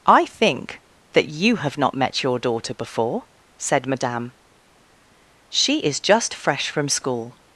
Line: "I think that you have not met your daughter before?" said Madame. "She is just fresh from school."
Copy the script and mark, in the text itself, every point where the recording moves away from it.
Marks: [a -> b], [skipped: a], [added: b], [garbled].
"I think that you have not met your daughter before?" said Madame. "She is just fresh from school."